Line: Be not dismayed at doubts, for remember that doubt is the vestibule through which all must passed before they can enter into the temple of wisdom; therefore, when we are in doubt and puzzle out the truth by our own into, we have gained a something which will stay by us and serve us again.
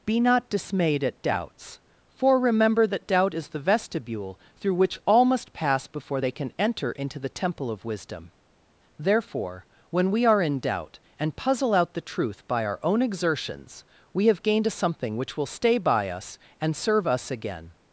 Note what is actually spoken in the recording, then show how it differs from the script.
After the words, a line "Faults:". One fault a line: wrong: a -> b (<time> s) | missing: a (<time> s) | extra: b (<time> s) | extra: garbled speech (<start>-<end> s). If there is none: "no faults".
Be not dismayed at doubts, for remember that doubt is the vestibule through which all must pass before they can enter into the temple of wisdom; therefore, when we are in doubt and puzzle out the truth by our own exertions, we have gained a something which will stay by us and serve us again.
Faults:
wrong: passed -> pass (5.5 s)
wrong: into -> exertions (13.0 s)